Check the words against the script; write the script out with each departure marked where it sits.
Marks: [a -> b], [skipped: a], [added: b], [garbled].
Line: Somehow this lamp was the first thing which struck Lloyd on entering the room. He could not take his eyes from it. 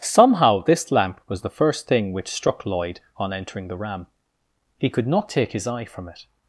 Somehow this lamp was the first thing which struck Lloyd on entering the [room. -> ram] He could not take his [eyes -> eye] from it.